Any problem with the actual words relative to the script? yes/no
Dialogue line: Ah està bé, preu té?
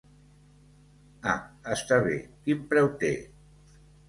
yes